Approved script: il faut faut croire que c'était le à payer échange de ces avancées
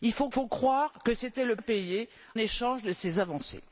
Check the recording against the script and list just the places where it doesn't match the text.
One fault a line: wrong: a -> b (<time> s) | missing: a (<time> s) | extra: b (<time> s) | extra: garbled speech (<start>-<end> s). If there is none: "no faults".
no faults